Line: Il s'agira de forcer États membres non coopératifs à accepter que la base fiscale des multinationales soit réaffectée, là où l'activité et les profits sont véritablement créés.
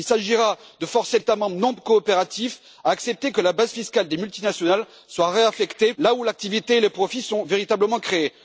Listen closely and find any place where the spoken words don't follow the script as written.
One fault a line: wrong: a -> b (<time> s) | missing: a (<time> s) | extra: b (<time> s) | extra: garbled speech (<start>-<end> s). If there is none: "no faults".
no faults